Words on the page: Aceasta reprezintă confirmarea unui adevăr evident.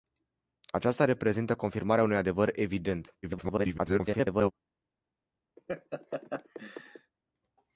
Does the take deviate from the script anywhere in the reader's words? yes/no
yes